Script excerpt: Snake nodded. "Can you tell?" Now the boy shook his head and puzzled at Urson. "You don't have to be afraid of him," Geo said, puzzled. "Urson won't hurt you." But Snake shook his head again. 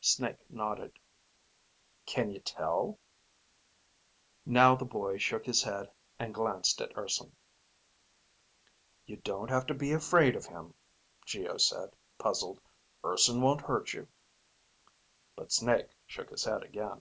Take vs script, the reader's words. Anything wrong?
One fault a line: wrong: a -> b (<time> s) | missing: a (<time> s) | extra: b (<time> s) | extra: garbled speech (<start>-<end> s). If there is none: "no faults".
wrong: puzzled -> glanced (6.3 s)